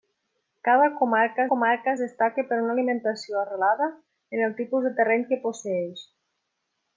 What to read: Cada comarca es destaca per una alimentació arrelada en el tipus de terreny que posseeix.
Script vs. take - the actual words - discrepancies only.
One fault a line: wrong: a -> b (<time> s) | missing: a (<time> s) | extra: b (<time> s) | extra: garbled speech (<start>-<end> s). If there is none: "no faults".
extra: comarca (1.5 s)